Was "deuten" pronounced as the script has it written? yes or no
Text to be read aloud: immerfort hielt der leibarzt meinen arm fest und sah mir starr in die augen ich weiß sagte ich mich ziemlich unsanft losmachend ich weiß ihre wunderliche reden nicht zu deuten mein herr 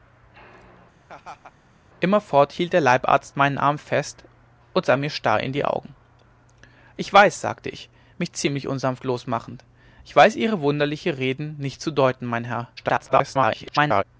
yes